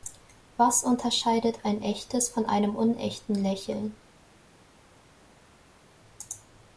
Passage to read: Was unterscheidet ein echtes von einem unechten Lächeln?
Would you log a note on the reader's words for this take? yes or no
no